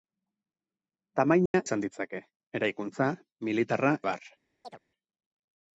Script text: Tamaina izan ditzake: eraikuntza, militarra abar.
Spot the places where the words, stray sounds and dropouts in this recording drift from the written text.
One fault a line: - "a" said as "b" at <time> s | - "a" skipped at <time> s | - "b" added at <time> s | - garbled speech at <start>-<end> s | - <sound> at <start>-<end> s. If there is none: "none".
- dropout at 1.5-1.5 s
- chirp at 4.6-4.8 s